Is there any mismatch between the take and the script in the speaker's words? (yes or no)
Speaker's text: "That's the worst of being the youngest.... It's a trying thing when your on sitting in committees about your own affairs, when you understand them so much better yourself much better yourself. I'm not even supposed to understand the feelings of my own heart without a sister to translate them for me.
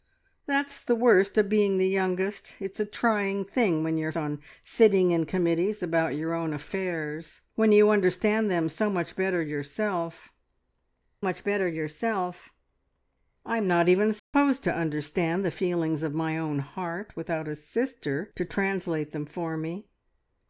no